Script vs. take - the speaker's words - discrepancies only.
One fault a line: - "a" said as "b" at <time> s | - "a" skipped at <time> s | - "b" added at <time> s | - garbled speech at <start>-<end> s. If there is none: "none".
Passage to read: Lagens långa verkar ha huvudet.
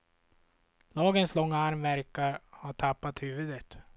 - "arm" added at 1.6 s
- "tappat" added at 2.7 s